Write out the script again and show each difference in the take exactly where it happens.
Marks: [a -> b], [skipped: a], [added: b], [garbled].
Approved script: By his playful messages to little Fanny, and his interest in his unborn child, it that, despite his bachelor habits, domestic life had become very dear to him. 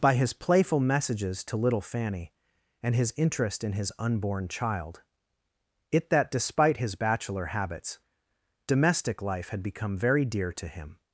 By his playful messages to little Fanny, and his interest in his unborn child, it that, despite his bachelor habits, domestic life had become very dear to him.